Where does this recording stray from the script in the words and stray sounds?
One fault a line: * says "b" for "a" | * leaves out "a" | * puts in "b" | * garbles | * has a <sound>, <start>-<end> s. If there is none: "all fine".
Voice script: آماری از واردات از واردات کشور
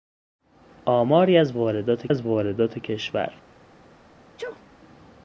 * has a sneeze, 4.4-4.6 s